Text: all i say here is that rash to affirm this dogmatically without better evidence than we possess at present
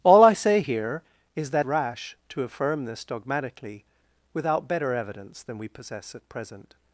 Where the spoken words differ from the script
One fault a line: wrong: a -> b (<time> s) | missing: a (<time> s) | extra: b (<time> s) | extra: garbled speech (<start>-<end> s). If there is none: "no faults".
no faults